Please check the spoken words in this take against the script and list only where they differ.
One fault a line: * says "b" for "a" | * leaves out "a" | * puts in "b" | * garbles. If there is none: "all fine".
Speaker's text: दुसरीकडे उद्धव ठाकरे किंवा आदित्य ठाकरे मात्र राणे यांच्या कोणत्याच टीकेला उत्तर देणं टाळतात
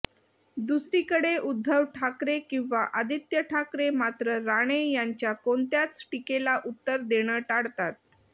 all fine